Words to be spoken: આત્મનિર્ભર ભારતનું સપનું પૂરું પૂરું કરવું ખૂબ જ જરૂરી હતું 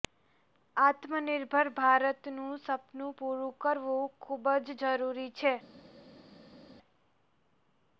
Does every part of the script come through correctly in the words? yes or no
no